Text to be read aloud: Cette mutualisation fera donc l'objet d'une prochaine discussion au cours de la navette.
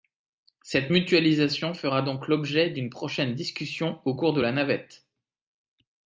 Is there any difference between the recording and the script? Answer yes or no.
no